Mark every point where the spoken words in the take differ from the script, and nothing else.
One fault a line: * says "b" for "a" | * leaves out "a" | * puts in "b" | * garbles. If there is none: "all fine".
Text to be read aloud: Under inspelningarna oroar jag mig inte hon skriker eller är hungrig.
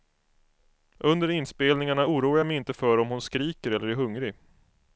* puts in "för om"